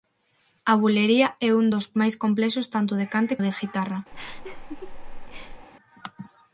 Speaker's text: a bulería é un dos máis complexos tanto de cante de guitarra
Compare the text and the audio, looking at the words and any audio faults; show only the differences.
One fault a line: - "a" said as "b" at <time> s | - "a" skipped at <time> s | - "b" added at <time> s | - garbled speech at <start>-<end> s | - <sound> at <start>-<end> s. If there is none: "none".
- laugh at 4.1-5.7 s